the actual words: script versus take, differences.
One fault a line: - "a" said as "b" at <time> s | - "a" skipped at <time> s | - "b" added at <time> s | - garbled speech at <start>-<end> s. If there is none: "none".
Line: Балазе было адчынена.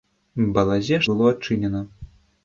none